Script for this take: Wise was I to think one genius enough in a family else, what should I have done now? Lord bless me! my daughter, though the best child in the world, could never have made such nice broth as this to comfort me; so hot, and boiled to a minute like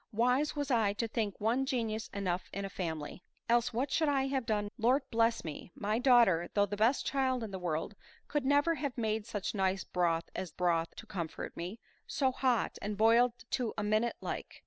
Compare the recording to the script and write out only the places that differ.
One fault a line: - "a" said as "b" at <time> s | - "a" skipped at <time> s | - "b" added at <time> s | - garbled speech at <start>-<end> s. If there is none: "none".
- "now" skipped at 4.7 s
- "this" said as "broth" at 10.5 s